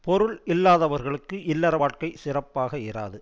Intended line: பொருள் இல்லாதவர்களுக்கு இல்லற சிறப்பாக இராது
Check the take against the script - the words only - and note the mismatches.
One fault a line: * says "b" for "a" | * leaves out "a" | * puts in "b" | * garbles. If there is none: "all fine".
* puts in "வாழ்க்கை"